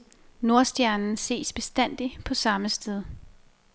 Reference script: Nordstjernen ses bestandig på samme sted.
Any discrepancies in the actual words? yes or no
no